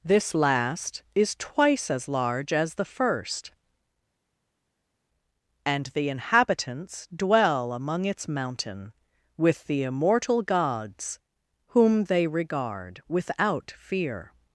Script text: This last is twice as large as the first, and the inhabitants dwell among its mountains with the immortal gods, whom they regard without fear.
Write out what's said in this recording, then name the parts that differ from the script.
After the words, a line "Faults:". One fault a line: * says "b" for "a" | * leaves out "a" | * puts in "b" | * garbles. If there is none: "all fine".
This last is twice as large as the first, and the inhabitants dwell among its mountain with the immortal gods, whom they regard without fear.
Faults:
* says "mountain" for "mountains"